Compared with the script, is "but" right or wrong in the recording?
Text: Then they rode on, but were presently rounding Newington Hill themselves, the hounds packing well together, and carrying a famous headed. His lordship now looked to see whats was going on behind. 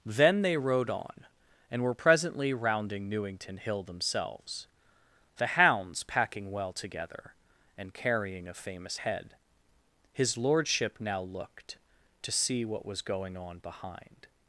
wrong